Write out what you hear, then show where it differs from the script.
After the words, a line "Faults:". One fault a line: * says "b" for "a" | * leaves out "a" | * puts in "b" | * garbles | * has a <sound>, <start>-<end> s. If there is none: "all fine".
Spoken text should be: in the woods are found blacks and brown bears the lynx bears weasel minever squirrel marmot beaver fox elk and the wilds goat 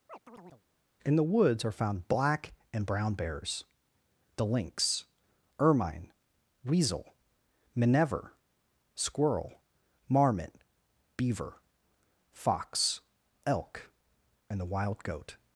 in the woods are found black and brown bears the lynx ermine weasel minever squirrel marmot beaver fox elk and the wild goat
Faults:
* has a chirp, 0.1-0.6 s
* says "black" for "blacks"
* says "ermine" for "bears"
* says "wild" for "wilds"